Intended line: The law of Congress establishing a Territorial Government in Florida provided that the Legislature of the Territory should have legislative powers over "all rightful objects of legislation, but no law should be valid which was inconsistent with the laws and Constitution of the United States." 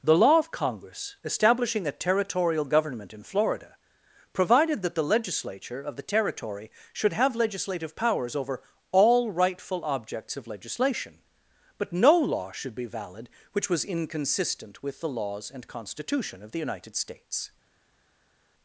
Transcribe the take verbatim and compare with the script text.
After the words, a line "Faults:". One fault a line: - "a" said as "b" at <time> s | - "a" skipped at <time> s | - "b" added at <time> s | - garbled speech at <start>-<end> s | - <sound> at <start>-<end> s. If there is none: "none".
The law of Congress establishing a Territorial Government in Florida provided that the Legislature of the Territory should have legislative powers over "all rightful objects of legislation, but no law should be valid which was inconsistent with the laws and Constitution of the United States."
Faults:
none